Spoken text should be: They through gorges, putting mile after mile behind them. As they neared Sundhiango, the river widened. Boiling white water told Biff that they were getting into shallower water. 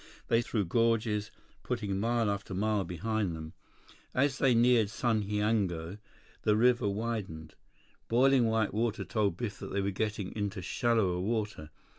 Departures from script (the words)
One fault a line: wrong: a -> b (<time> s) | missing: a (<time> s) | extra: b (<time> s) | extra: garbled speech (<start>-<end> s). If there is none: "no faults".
no faults